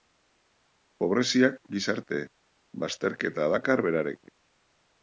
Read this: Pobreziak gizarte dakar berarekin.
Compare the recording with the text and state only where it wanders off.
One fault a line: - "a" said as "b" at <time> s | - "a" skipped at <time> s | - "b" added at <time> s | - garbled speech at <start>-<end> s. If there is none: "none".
- "bazterketa" added at 2.9 s